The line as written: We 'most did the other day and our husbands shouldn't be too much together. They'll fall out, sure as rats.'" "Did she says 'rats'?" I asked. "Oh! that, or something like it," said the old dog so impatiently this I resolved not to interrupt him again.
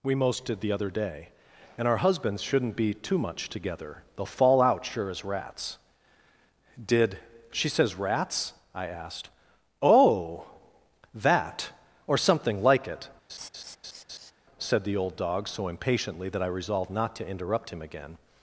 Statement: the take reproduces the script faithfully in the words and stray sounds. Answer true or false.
false